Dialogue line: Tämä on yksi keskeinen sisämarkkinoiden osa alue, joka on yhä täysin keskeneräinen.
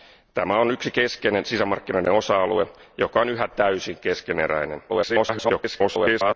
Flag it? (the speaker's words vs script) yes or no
yes